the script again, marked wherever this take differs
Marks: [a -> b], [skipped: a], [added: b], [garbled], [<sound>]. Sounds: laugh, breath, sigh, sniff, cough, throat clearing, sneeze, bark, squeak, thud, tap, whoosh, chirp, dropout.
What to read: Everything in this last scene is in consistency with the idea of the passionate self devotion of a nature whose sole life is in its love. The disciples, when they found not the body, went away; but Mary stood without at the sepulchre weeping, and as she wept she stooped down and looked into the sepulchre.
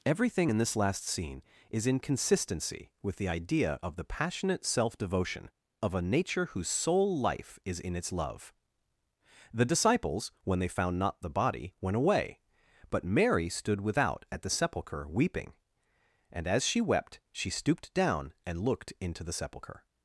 Everything in this last scene is in consistency with the idea of the passionate self devotion of a nature whose sole life is in its love. The disciples, when they found not the body, went away; but Mary stood without at the sepulchre weeping, and as she wept she stooped down and looked into the sepulchre.